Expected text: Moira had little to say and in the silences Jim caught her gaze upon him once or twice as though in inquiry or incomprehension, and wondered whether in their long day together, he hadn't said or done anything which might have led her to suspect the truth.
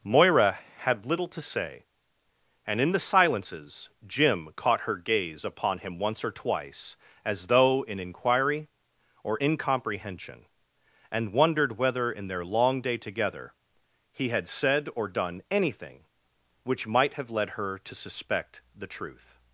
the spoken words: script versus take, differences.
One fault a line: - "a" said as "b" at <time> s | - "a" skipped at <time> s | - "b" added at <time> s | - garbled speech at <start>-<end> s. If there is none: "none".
- "hadn't" said as "had" at 14.3 s